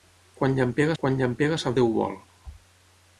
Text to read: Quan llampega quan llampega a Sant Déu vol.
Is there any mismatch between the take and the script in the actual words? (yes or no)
no